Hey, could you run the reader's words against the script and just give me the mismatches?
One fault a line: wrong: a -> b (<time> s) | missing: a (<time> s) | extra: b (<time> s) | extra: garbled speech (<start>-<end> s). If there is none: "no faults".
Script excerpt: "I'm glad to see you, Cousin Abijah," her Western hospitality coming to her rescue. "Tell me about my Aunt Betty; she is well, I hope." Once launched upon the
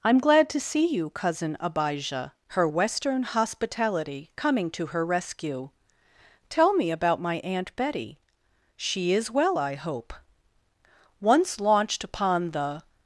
no faults